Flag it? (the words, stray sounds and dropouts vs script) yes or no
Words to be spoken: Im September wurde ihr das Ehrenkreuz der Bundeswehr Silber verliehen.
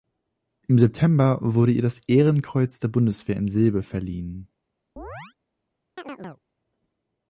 yes